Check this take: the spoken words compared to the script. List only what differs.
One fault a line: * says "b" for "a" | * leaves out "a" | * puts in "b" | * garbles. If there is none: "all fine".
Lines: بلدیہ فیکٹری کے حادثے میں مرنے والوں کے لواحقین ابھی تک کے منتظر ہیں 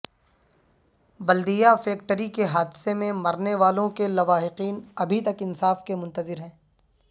* puts in "انصاف"